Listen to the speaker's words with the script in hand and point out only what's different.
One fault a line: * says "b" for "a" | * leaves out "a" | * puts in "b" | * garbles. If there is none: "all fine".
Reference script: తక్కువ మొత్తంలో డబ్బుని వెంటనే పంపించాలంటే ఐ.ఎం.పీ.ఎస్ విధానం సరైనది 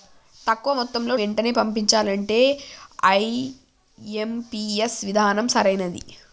* leaves out "డబ్బుని"